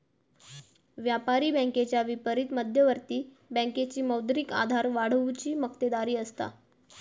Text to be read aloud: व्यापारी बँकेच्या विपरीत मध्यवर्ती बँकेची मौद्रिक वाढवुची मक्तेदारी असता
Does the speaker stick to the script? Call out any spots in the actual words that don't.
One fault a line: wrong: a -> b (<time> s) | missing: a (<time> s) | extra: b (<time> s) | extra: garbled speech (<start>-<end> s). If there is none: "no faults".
extra: आधार (4.5 s)